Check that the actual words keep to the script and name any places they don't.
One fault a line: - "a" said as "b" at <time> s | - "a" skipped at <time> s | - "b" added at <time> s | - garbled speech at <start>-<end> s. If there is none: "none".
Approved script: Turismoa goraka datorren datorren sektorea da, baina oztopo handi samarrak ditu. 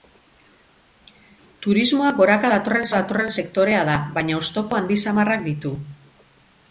none